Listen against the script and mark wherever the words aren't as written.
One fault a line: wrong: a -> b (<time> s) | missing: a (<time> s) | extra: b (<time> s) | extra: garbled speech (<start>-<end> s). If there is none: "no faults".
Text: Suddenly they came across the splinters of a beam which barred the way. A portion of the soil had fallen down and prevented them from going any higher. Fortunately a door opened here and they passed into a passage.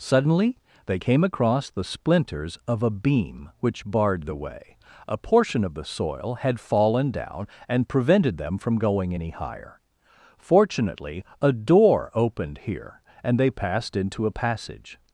no faults